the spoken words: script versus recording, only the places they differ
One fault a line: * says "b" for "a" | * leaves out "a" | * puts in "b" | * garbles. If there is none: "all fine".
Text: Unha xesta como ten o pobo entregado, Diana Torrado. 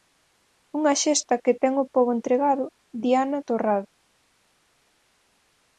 * says "que" for "como"